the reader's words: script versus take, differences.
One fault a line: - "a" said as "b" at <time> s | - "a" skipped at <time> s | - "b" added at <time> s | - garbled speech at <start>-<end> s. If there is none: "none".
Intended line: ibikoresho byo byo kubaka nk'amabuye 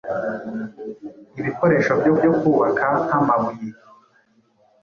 none